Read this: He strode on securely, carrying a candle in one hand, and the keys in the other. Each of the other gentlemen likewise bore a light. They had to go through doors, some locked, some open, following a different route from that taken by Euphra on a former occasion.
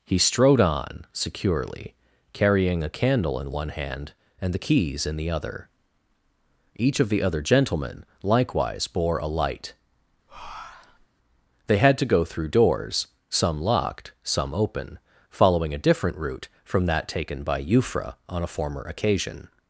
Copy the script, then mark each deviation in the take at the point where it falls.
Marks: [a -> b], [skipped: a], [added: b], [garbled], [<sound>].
He strode on securely, carrying a candle in one hand, and the keys in the other. Each of the other gentlemen likewise bore a light. [breath] They had to go through doors, some locked, some open, following a different route from that taken by Euphra on a former occasion.